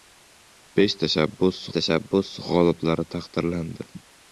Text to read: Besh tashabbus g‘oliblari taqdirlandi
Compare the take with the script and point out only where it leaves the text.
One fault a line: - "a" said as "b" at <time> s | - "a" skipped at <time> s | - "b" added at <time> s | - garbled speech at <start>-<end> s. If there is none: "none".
- "tashabbus" added at 1.8 s